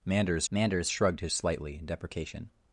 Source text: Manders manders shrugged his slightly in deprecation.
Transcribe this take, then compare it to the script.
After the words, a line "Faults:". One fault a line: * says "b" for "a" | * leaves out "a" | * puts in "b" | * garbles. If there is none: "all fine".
Manders manders shrugged his slightly in deprecation.
Faults:
all fine